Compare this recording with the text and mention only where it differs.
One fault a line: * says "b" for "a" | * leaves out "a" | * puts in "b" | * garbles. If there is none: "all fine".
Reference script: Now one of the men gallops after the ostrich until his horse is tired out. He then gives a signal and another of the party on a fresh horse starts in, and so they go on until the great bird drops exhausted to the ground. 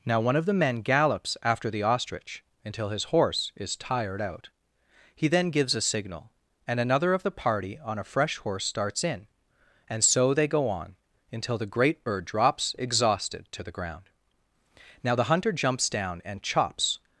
* puts in "Now the hunter jumps down and chops"